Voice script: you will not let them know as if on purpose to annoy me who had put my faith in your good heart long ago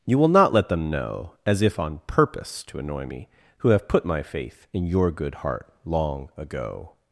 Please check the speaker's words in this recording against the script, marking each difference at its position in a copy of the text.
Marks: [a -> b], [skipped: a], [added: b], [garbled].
you will not let them know as if on purpose to annoy me who [had -> have] put my faith in your good heart long ago